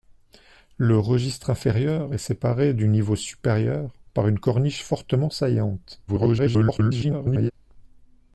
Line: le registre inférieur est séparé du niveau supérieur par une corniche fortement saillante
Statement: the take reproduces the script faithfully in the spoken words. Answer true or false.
false